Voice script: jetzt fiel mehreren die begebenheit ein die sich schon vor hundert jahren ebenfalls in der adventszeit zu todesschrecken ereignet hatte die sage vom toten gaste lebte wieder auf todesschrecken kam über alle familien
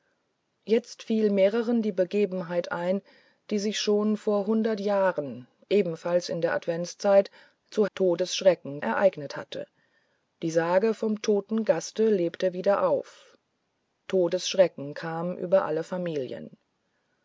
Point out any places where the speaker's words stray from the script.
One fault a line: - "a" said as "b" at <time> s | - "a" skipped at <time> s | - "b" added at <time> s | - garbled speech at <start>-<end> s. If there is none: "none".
none